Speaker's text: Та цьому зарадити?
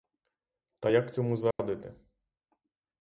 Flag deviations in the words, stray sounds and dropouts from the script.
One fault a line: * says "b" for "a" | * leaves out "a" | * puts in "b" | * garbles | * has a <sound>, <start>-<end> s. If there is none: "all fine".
* puts in "як"
* has a dropout, 1.5-1.6 s